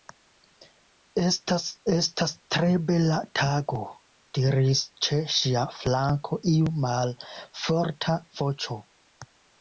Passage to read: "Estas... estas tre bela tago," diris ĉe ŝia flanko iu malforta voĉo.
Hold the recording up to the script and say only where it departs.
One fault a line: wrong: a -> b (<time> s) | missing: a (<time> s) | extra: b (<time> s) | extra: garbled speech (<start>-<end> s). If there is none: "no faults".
no faults